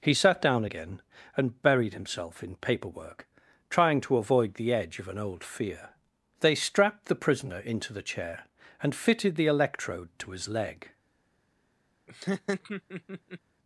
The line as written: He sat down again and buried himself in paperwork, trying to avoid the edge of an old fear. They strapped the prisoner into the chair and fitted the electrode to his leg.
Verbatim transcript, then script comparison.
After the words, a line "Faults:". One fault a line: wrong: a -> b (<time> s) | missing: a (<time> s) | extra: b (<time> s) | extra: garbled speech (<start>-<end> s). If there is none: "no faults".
He sat down again and buried himself in paperwork, trying to avoid the edge of an old fear. They strapped the prisoner into the chair and fitted the electrode to his leg.
Faults:
no faults